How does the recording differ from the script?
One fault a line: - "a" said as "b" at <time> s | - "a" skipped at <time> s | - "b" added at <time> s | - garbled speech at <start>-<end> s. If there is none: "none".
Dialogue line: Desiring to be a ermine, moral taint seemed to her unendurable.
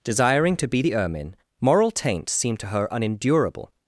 - "a" said as "the" at 0.8 s